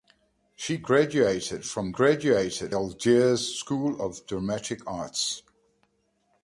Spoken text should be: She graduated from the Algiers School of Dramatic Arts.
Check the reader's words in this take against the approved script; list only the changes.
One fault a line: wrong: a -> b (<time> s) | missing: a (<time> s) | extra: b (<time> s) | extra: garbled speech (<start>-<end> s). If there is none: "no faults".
wrong: the -> graduated (1.9 s)